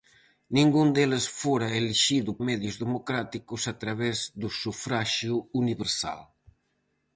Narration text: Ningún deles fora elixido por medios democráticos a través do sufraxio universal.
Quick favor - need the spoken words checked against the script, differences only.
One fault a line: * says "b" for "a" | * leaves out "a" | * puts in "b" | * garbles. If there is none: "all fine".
* leaves out "por"